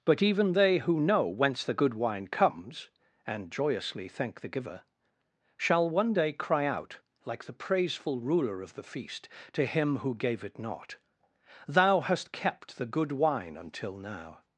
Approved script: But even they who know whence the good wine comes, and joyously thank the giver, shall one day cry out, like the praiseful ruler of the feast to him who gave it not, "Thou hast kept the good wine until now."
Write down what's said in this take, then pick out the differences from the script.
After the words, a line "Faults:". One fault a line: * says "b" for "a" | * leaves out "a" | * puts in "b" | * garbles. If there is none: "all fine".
But even they who know whence the good wine comes, and joyously thank the giver, shall one day cry out, like the praiseful ruler of the feast to him who gave it not, "Thou hast kept the good wine until now."
Faults:
all fine